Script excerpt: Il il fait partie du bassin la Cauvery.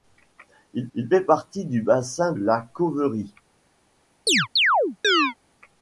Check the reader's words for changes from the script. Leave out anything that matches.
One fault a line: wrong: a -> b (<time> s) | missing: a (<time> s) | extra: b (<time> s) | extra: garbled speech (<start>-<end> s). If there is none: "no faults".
no faults